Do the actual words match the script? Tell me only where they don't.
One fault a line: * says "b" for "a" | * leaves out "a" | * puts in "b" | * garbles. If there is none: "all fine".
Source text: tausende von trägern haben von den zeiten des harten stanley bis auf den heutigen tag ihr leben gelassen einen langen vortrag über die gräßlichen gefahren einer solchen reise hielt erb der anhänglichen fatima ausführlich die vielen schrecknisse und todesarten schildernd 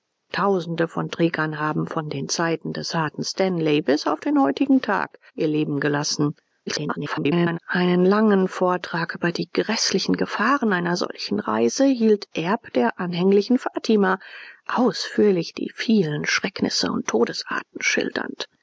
* garbles